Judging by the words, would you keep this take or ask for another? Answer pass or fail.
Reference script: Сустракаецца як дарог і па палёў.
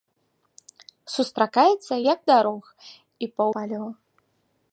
pass